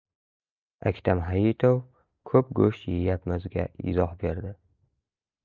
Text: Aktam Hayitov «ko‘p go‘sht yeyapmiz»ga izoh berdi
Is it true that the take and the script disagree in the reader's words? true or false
false